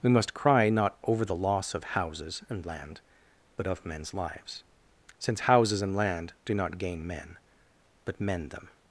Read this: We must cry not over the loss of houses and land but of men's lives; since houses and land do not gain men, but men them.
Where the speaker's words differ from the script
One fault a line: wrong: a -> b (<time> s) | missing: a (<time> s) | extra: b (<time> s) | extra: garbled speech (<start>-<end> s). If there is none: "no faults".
no faults